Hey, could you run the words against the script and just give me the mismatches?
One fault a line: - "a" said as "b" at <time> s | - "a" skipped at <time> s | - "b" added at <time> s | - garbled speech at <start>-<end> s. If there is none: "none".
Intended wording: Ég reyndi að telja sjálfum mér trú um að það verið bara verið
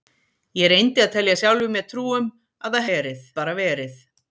none